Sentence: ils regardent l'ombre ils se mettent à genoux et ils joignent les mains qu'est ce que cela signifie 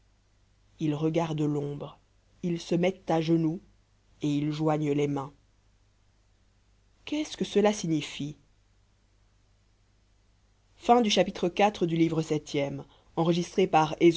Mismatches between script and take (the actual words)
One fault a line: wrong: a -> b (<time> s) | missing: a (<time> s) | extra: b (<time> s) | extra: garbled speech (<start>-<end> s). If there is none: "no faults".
no faults